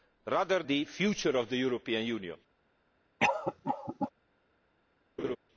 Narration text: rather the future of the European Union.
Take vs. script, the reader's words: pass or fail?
pass